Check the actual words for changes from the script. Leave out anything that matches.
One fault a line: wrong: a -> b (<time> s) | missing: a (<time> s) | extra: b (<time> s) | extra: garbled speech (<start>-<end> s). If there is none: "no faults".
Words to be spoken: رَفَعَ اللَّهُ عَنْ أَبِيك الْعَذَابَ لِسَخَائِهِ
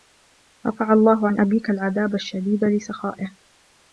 extra: الشَّدِيدَ (2.1 s)